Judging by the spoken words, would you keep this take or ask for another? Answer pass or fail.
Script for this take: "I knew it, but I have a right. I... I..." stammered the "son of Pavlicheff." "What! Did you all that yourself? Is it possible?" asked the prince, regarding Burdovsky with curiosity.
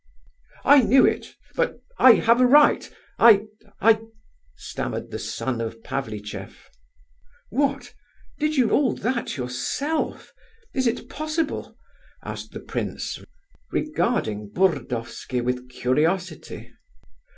pass